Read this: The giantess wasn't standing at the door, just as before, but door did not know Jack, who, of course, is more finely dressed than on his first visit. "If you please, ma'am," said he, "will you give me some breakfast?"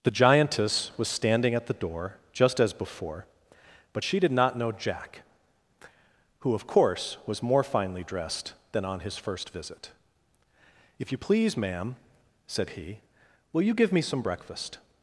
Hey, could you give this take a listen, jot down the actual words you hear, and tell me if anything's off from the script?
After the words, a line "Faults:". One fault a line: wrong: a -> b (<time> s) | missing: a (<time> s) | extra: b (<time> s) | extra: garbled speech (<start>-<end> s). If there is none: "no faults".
The giantess was standing at the door, just as before, but she did not know Jack, who, of course, was more finely dressed than on his first visit. "If you please, ma'am," said he, "will you give me some breakfast?"
Faults:
wrong: wasn't -> was (1.0 s)
wrong: door -> she (4.0 s)
wrong: is -> was (7.3 s)